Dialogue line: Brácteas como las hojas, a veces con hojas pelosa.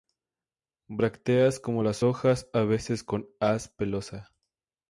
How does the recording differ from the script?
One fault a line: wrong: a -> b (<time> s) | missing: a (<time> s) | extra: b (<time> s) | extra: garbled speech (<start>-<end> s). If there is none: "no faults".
wrong: hojas -> haz (3.4 s)